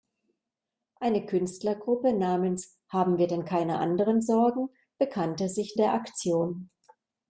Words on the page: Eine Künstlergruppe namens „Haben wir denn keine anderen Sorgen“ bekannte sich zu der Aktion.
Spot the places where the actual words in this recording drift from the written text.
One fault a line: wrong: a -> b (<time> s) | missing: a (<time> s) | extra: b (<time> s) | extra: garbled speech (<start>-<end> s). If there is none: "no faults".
missing: zu (5.8 s)